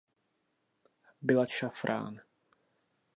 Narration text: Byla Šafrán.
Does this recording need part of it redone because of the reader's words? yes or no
no